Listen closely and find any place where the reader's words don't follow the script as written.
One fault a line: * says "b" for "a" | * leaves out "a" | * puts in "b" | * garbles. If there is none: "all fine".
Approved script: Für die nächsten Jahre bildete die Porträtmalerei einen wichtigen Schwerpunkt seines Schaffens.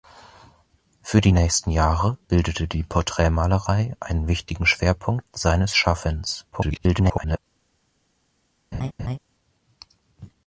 * garbles